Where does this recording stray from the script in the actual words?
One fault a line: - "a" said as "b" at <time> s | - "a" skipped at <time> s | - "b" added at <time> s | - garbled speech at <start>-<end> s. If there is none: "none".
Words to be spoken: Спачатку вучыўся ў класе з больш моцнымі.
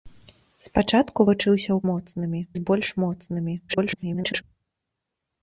- "класе" said as "моцнымі" at 1.9 s
- garbled speech at 3.7-4.4 s